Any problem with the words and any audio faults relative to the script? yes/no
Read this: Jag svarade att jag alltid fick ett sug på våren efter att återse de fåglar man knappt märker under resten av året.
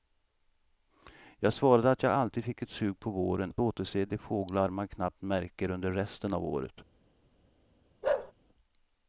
yes